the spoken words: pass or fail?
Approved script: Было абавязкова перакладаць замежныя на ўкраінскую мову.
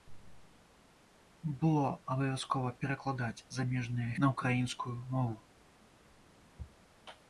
pass